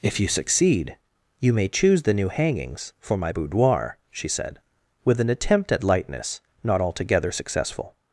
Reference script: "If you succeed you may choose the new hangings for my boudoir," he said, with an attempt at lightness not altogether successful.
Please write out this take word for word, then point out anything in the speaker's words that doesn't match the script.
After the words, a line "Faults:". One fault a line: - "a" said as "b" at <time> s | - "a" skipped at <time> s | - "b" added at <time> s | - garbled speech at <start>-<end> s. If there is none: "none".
"If you succeed you may choose the new hangings for my boudoir," she said, with an attempt at lightness not altogether successful.
Faults:
- "he" said as "she" at 4.1 s